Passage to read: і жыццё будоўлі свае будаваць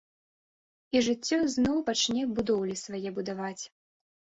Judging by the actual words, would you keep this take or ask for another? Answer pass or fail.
fail